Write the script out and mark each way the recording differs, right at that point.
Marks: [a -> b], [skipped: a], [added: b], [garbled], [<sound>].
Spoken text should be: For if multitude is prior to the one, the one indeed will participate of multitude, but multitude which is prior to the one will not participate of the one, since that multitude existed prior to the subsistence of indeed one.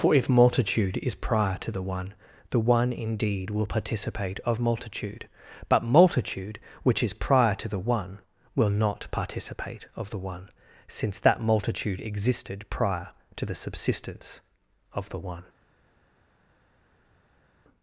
For if multitude is prior to the one, the one indeed will participate of multitude, but multitude which is prior to the one will not participate of the one, since that multitude existed prior to the subsistence of [indeed -> the] one.